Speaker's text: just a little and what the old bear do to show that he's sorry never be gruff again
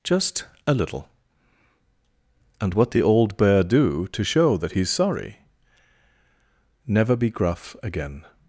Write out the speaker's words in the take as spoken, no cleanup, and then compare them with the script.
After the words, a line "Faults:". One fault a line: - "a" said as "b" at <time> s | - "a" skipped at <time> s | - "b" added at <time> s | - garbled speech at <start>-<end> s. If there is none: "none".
just a little and what the old bear do to show that he's sorry never be gruff again
Faults:
none